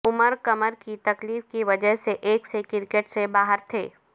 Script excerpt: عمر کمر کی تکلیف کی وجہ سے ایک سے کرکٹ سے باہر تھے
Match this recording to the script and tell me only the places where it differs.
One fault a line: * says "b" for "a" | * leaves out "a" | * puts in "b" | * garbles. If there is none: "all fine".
all fine